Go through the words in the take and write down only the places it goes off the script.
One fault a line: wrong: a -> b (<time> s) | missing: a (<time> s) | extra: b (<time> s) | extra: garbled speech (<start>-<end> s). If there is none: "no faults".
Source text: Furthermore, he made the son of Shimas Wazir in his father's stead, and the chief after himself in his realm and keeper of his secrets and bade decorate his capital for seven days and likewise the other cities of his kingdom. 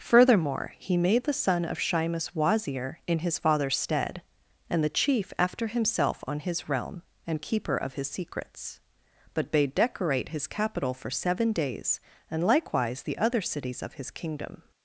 wrong: in -> on (6.3 s)
wrong: and -> but (9.4 s)